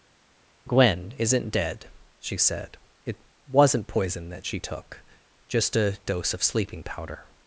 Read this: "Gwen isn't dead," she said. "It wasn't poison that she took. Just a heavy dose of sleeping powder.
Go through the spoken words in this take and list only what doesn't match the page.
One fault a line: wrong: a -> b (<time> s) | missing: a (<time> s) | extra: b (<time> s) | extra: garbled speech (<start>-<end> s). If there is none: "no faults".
missing: heavy (6.0 s)